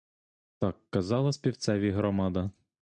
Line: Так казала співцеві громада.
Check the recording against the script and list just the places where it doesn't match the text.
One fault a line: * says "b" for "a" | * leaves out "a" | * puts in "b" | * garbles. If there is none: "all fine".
all fine